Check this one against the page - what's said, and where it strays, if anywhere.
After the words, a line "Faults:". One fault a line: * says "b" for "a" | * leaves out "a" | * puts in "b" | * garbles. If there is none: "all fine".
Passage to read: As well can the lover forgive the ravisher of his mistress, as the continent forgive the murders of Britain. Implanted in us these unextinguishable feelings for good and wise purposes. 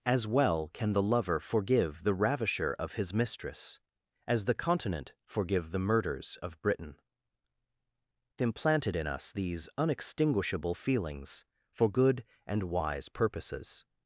As well can the lover forgive the ravisher of his mistress, as the continent forgive the murders of Britain. Implanted in us these unextinguishable feelings for good and wise purposes.
Faults:
all fine